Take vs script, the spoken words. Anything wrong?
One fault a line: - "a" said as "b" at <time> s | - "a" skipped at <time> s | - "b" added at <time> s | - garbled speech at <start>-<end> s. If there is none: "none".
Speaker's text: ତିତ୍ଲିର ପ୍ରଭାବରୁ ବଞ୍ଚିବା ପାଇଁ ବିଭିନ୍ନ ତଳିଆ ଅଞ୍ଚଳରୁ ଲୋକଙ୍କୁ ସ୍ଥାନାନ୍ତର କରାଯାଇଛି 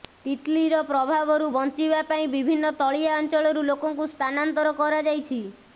none